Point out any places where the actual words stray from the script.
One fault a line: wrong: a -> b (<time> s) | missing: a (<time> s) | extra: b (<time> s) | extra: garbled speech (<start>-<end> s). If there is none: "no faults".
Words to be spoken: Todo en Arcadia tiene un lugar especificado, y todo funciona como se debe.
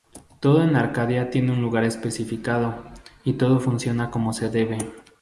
no faults